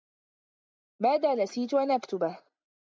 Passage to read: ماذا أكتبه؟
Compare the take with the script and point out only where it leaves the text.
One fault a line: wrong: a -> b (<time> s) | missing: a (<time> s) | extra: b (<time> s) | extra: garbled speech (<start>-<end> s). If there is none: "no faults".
extra: نسيت أن (1.4 s)